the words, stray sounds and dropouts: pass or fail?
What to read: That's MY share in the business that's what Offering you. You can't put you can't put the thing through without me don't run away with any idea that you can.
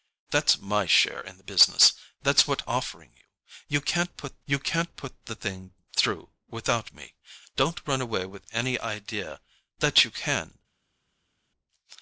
pass